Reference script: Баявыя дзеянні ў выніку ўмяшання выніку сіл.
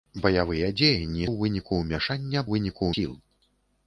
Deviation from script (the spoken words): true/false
false